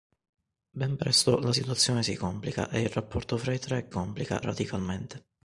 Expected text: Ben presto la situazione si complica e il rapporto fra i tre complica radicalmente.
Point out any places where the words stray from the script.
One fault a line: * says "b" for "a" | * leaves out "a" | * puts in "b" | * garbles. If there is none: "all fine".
all fine